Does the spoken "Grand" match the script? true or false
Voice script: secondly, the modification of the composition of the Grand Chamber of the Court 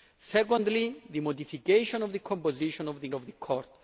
false